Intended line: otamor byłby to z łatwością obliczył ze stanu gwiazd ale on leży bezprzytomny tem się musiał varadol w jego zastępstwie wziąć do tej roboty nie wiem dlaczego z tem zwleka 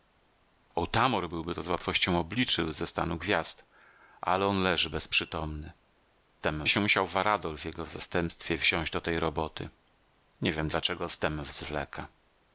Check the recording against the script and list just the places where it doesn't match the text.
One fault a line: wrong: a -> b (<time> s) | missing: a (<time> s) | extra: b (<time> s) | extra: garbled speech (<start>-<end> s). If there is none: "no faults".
no faults